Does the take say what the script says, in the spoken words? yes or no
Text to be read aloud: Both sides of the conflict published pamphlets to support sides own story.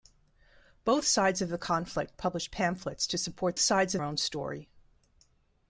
yes